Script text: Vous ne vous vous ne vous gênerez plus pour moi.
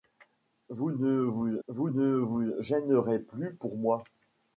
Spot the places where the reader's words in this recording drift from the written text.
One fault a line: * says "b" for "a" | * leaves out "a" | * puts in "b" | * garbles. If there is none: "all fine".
all fine